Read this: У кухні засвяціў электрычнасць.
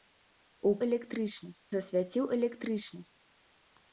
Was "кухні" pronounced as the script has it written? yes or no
no